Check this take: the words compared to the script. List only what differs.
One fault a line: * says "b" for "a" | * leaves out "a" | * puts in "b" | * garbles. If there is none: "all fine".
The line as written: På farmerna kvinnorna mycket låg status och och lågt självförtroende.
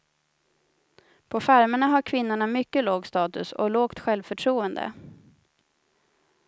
* puts in "har"
* leaves out "och"